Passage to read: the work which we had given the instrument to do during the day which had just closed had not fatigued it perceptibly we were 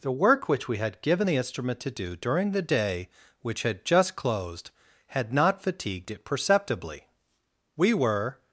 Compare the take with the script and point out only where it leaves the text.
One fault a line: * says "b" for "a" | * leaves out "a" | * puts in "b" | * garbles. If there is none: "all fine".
all fine